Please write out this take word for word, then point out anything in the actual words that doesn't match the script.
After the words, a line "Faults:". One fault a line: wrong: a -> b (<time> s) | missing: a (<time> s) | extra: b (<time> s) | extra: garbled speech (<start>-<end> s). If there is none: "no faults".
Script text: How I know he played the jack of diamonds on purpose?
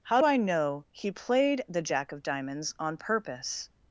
How I know he played the jack of diamonds on purpose?
Faults:
no faults